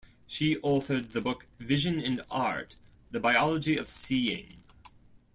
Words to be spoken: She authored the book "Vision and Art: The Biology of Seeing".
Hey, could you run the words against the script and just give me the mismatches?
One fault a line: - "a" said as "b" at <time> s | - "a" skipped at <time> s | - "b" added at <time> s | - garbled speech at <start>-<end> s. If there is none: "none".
none